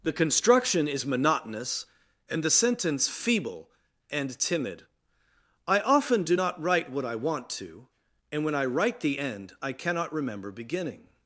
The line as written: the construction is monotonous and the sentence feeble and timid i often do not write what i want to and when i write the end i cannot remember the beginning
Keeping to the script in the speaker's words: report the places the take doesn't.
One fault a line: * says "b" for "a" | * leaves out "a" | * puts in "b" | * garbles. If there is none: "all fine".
* leaves out "the"